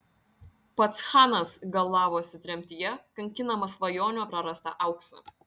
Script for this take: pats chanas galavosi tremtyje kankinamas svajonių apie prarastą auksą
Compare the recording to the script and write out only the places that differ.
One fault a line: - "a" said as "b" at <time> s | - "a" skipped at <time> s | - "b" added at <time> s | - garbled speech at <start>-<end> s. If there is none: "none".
- "apie" skipped at 4.2 s